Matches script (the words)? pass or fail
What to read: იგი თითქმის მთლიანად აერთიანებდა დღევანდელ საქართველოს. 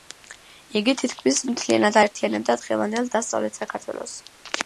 fail